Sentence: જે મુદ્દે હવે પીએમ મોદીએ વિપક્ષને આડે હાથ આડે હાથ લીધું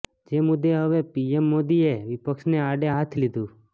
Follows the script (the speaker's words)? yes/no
no